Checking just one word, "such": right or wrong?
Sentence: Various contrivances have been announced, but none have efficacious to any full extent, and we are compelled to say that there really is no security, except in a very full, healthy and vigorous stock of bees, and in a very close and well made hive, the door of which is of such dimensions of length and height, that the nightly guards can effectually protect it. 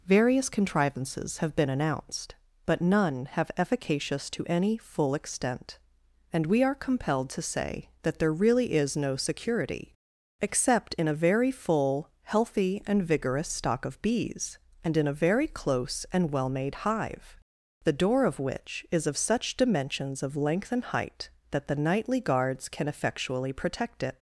right